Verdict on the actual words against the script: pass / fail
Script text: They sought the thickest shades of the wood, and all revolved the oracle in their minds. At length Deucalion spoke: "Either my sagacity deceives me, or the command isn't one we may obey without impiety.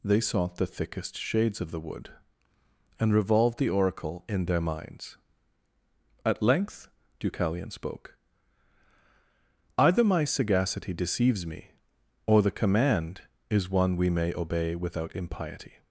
fail